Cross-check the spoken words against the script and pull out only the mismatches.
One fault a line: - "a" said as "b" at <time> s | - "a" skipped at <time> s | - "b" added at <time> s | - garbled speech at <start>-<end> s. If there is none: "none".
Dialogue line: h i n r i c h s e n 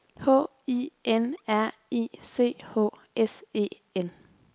none